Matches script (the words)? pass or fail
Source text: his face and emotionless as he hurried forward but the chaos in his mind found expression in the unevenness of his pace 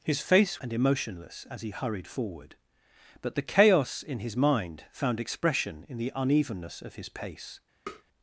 pass